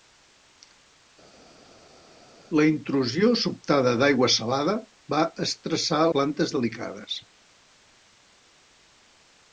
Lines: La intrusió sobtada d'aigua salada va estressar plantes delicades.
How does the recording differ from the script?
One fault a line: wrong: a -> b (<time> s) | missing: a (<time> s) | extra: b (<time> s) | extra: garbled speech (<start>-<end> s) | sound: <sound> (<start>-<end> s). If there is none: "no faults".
no faults